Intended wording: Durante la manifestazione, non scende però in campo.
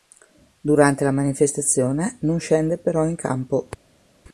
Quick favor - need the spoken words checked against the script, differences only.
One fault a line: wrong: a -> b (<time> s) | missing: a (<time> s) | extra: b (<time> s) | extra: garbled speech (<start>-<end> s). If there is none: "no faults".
no faults